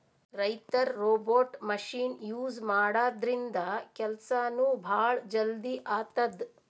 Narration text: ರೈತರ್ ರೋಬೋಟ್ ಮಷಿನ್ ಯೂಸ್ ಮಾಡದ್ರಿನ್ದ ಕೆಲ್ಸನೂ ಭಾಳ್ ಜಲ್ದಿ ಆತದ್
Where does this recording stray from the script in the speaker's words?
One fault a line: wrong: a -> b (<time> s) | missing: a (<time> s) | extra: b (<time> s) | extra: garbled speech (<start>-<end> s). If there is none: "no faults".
no faults